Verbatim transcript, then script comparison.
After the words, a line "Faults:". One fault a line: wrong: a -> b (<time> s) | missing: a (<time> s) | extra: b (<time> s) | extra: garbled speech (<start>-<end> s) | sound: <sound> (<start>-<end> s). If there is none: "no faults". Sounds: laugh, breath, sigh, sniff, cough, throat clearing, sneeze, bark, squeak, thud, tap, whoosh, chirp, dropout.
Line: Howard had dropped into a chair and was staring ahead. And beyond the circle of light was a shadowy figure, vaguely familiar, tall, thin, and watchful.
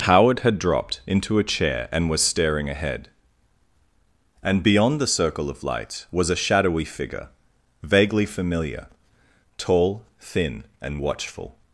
Howard had dropped into a chair and was staring ahead. And beyond the circle of light was a shadowy figure, vaguely familiar, tall, thin, and watchful.
Faults:
no faults